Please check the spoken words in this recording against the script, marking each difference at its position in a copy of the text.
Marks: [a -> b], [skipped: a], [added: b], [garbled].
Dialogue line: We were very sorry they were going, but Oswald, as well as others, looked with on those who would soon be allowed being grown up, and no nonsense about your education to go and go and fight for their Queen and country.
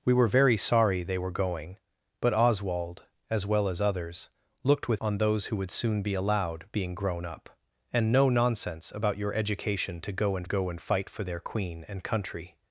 We were very sorry they were going, but Oswald, as well as others, looked with on those who would soon be allowed being grown up, and no nonsense about your education to go and go and fight for their Queen and country.